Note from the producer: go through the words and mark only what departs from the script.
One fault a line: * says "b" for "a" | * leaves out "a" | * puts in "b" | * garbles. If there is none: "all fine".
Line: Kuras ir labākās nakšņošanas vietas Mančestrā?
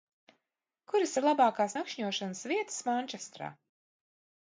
all fine